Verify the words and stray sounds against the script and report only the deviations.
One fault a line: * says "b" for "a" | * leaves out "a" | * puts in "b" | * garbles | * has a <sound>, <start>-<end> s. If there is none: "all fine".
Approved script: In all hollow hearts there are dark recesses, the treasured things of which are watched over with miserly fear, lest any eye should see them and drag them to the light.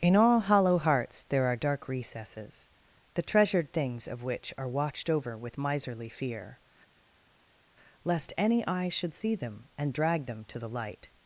all fine